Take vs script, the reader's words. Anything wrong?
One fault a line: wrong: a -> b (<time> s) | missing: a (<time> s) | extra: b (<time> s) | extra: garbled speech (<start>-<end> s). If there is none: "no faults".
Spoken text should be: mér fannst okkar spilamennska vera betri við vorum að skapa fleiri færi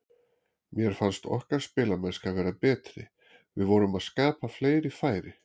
no faults